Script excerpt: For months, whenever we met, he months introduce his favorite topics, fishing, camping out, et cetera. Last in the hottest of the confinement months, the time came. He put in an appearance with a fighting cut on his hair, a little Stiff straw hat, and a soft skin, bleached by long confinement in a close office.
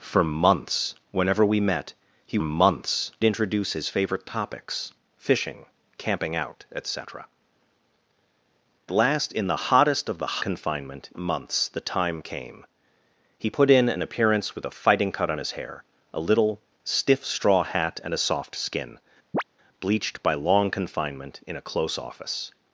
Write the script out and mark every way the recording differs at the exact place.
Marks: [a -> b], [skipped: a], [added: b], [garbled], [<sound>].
For months, whenever we met, he months introduce his favorite topics, fishing, camping out, et cetera. Last in the hottest of the confinement months, the time came. He put in an appearance with a fighting cut on his hair, a little Stiff straw hat, and a soft skin, [chirp] bleached by long confinement in a close office.